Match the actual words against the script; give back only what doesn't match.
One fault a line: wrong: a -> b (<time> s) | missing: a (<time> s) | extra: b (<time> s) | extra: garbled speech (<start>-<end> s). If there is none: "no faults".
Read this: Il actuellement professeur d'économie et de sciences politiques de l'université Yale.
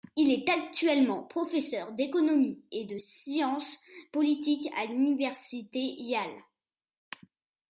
extra: est (0.3 s)
wrong: de -> à (4.7 s)